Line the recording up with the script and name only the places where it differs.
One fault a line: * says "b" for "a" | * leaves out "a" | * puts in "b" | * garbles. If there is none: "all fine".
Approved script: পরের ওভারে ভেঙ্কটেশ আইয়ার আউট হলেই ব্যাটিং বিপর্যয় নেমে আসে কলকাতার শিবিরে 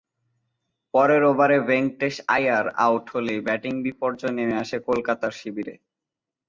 all fine